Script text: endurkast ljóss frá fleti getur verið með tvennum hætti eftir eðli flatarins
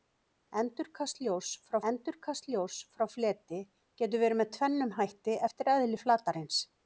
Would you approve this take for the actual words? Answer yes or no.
no